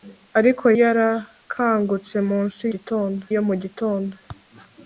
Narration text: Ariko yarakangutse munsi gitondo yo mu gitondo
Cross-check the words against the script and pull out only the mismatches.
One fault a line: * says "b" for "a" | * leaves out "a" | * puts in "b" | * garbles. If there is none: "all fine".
all fine